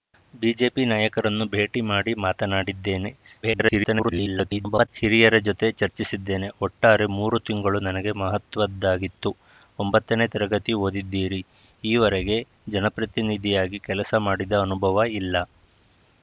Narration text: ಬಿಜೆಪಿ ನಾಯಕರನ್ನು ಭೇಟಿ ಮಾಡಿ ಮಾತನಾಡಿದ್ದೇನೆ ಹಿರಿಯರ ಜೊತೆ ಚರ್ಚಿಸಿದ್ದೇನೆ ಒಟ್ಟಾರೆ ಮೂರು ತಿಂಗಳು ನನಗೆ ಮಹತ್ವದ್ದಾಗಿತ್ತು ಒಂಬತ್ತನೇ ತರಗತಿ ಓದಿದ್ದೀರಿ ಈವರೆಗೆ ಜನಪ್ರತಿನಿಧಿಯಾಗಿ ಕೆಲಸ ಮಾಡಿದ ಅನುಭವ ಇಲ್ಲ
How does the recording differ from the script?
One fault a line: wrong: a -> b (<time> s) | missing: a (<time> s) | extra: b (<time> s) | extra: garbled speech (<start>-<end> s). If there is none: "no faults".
extra: garbled speech (3.4-4.9 s)